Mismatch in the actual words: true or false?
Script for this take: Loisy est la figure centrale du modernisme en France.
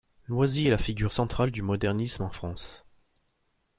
false